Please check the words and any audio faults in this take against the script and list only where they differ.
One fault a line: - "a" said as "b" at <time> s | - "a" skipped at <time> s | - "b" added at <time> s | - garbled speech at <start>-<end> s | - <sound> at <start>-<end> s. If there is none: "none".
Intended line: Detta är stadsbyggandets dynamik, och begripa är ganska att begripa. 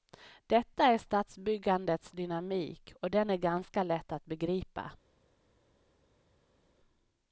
- "begripa" said as "den" at 3.1 s
- "lätt" added at 3.8 s